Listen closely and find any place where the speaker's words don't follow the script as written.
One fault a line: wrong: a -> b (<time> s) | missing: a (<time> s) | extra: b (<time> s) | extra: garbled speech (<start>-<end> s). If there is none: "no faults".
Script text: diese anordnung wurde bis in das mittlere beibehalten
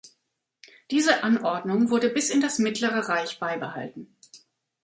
extra: reich (3.1 s)